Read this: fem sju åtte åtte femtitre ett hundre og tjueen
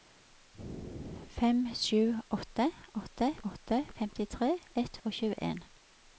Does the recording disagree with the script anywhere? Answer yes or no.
yes